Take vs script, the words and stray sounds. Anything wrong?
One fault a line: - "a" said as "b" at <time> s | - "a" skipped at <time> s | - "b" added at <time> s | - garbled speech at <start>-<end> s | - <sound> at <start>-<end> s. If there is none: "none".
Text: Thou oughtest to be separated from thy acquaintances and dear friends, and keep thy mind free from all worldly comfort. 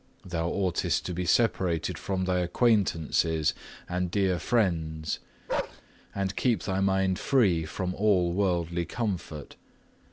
- bark at 5.5-5.8 s